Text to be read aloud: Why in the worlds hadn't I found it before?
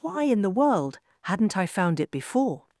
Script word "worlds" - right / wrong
wrong